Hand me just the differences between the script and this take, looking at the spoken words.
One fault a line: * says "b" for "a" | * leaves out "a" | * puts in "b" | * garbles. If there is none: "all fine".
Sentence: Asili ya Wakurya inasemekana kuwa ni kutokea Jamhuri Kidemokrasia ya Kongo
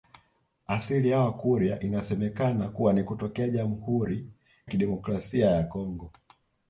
all fine